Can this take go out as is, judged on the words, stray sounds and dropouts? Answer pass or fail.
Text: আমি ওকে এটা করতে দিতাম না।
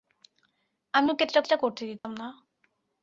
fail